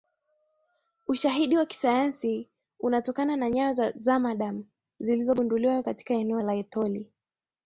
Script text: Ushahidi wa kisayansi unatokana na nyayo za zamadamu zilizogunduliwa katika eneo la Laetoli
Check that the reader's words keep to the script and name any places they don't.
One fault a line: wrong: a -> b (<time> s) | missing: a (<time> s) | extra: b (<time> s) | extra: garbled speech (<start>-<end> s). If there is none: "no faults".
missing: la (6.4 s)